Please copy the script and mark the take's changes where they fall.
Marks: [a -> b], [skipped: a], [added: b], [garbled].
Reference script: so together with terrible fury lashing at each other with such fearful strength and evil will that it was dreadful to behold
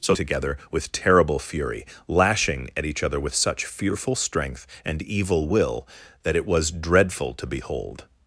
so together with terrible fury lashing at each other with such fearful strength and evil will that it was dreadful to behold